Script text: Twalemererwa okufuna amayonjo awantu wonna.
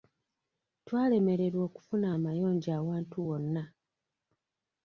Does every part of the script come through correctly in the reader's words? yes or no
yes